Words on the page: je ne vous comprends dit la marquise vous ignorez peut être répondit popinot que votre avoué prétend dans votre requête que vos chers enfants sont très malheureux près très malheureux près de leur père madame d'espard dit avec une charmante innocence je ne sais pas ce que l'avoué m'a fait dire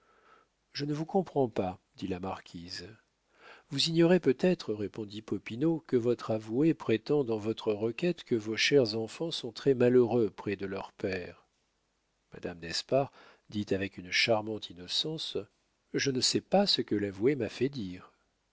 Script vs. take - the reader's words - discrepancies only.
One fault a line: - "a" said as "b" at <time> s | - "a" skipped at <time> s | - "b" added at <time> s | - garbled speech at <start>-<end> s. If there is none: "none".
- "pas" added at 1.5 s
- "très malheureux près" skipped at 10.6 s